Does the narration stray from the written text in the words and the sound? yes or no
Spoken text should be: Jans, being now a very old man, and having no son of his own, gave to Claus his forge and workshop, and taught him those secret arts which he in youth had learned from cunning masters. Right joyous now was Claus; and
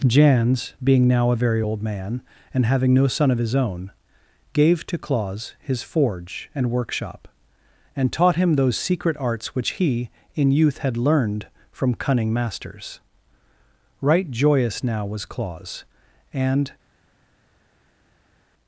no